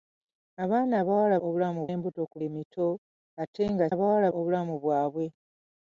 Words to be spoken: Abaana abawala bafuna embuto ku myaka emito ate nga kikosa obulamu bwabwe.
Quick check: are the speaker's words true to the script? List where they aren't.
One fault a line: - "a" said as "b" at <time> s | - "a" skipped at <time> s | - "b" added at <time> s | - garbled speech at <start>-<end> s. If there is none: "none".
- "bafuna" said as "obulamu" at 1.4 s
- "myaka" skipped at 2.4 s
- "kikosa" said as "abawala" at 3.9 s